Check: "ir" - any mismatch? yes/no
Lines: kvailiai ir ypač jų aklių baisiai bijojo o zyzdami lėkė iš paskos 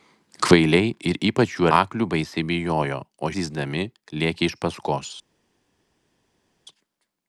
no